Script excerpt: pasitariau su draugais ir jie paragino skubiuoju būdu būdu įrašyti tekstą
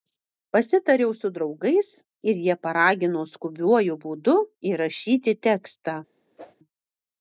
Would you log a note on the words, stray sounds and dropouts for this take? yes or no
yes